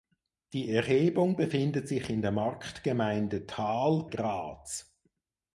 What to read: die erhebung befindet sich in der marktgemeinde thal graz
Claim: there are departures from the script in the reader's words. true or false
false